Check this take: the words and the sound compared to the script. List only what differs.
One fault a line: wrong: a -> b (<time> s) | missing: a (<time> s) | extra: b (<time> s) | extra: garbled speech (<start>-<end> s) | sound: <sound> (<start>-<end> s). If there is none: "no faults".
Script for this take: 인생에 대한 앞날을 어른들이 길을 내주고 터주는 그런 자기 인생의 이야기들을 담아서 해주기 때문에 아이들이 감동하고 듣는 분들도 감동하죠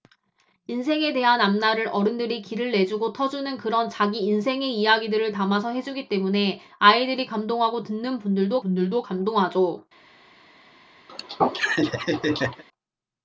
extra: 분들도 (8.6 s)
sound: laugh (11.1-12.6 s)